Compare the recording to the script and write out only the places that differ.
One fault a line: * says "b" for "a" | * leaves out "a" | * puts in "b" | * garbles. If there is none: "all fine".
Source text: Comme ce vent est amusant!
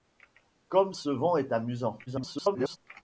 * garbles